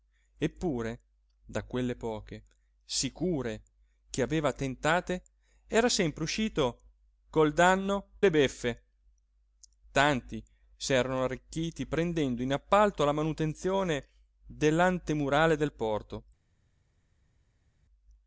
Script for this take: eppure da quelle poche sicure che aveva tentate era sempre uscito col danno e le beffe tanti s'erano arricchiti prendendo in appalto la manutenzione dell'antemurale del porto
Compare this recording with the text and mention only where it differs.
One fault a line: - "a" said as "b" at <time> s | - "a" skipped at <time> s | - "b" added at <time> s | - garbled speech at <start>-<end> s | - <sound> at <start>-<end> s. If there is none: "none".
- "e" skipped at 8.1 s